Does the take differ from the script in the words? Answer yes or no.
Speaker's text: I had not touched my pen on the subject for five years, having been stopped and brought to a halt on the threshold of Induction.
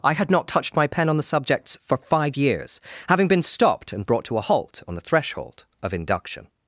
yes